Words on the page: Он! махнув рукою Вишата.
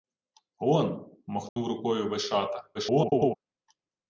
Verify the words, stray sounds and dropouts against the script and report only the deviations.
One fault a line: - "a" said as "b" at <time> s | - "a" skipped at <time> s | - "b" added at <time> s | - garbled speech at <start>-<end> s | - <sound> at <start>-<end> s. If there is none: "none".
- dropout at 1.5-1.6 s
- garbled speech at 2.7-3.4 s